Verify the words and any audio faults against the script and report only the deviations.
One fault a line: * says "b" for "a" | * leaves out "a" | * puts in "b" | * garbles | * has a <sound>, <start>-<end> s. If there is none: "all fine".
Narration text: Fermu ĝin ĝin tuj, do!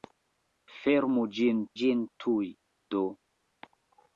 all fine